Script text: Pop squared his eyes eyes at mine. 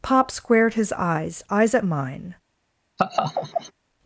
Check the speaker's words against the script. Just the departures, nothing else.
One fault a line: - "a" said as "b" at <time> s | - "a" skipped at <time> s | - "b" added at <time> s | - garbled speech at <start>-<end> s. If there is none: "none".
none